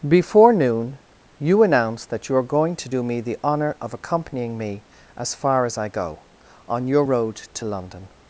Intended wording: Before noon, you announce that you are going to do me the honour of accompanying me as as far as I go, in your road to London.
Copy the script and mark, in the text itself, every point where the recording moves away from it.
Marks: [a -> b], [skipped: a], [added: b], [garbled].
Before noon, you announce that you are going to do me the honour of accompanying me as [skipped: as] far as I go, [in -> on] your road to London.